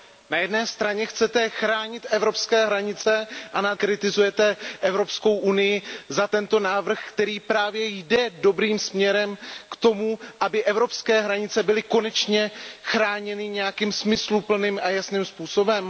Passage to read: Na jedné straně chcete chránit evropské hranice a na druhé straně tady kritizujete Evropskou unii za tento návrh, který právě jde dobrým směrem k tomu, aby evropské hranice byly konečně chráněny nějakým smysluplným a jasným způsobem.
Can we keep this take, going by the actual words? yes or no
no